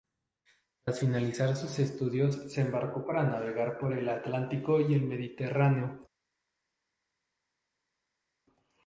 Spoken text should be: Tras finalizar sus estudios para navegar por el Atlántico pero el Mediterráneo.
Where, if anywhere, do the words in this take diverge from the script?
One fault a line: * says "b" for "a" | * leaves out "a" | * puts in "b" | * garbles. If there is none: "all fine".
* puts in "se embarcó"
* says "y" for "pero"